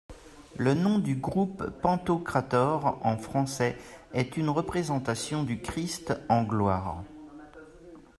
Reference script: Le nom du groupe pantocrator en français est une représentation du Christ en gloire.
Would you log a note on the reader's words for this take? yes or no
no